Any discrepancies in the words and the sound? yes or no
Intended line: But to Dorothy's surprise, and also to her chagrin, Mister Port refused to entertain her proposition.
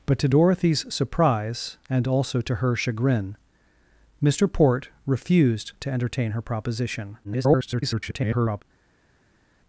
yes